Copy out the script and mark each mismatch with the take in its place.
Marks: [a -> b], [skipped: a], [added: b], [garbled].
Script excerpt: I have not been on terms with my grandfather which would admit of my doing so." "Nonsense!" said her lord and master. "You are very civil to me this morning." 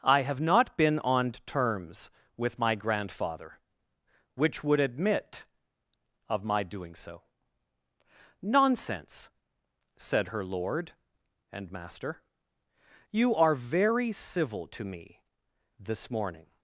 I have not been on terms with my grandfather which would admit of my doing so." "Nonsense!" said her lord and master. "You are very civil to me this morning."